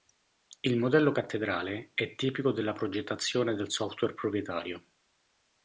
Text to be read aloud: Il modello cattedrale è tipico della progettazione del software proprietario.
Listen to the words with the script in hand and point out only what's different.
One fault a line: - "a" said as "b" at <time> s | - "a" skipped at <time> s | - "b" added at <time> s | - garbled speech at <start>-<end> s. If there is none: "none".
none